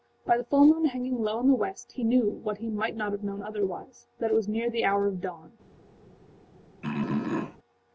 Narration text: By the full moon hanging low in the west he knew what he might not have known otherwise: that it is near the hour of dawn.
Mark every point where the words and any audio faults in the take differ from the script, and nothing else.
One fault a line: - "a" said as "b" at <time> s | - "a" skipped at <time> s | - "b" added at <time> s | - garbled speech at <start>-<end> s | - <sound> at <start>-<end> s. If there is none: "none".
- "is" said as "was" at 4.3 s
- throat clearing at 6.8-7.6 s